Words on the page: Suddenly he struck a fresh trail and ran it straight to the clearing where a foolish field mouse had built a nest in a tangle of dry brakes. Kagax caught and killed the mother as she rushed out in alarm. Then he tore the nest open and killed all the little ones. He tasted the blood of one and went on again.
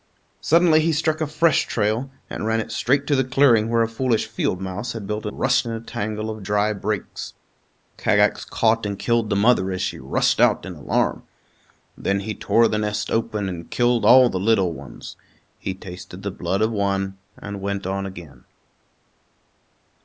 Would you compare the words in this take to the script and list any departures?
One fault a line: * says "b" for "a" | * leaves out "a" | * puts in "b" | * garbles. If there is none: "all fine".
* says "rushed" for "nest"